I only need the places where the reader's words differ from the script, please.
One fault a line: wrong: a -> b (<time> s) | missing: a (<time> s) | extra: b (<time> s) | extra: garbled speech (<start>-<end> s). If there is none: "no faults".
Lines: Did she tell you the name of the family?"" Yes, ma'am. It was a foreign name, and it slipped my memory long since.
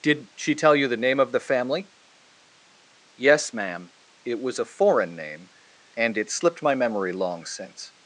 no faults